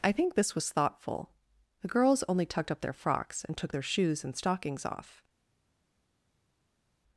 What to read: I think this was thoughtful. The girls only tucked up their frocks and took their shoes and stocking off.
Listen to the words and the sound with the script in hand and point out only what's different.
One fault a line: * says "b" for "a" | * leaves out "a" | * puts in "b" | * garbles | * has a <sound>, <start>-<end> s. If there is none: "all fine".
* says "stockings" for "stocking"